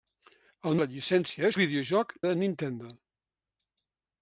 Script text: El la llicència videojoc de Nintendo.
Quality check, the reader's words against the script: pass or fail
pass